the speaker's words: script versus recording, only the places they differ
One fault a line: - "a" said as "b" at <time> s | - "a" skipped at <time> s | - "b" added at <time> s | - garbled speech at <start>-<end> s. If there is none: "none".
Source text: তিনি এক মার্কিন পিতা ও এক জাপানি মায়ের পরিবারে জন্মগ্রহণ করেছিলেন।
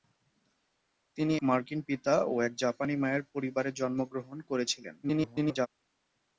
- "এক" skipped at 1.4 s
- garbled speech at 5.0-5.7 s